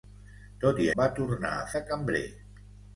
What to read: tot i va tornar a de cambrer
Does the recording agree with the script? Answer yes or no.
yes